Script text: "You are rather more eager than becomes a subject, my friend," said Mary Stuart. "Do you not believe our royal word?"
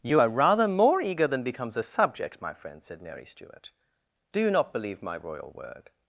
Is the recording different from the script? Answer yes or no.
yes